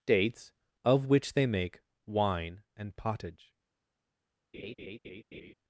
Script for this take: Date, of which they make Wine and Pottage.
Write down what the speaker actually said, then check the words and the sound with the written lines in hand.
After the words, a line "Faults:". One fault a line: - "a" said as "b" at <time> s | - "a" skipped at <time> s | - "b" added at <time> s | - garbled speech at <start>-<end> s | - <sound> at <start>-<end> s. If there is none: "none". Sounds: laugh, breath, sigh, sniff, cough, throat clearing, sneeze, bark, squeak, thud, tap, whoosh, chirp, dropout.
Dates, of which they make Wine and Pottage.
Faults:
- "Date" said as "Dates" at 0.1 s
- laugh at 4.5-5.5 s